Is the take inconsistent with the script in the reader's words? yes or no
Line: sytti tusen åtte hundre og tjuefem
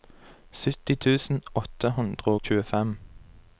yes